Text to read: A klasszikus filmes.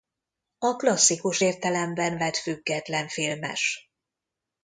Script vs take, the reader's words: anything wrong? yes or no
yes